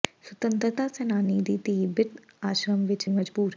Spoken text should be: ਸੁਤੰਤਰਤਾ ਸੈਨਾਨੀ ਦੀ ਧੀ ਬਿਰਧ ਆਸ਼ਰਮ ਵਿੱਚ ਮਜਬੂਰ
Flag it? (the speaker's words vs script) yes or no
no